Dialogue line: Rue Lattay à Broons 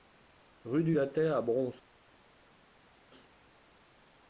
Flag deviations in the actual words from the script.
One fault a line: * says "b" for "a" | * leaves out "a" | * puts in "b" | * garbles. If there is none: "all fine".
* puts in "du"